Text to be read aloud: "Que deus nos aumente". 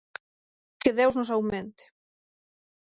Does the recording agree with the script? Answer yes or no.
yes